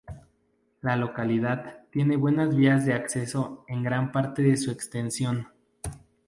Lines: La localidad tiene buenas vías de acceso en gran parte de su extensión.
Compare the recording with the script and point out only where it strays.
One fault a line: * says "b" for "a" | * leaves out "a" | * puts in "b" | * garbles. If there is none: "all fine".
all fine